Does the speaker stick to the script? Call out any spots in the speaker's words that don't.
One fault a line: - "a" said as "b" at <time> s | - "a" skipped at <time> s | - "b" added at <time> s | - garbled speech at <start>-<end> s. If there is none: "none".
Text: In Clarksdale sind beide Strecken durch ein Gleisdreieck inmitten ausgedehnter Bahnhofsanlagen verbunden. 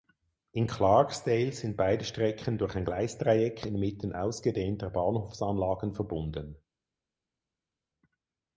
none